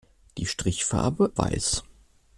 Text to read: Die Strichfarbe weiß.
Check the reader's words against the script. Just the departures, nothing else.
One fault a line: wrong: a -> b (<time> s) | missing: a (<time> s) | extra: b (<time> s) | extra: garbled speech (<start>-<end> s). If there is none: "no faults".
no faults